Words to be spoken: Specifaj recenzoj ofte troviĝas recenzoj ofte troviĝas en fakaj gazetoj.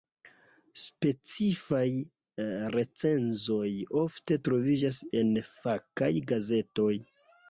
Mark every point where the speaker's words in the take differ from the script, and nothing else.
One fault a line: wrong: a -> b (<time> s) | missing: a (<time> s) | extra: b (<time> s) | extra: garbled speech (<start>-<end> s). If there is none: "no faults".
missing: recenzoj ofte troviĝas (5.0 s)